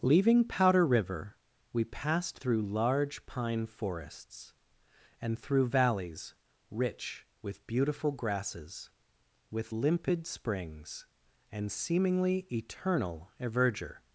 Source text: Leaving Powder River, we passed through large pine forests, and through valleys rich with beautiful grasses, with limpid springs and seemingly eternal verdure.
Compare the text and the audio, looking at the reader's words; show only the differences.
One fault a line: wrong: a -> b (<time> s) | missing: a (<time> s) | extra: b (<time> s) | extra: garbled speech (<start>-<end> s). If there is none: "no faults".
no faults